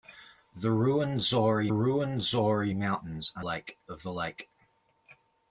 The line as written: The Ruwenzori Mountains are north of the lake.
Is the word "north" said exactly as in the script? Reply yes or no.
no